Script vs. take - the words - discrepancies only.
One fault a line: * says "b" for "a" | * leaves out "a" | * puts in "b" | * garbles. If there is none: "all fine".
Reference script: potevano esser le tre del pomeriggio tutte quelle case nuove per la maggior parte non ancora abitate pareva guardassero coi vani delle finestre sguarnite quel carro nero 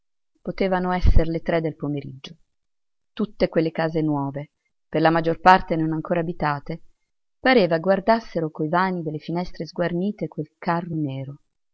all fine